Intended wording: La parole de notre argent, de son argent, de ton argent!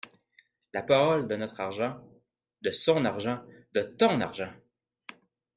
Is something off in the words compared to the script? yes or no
no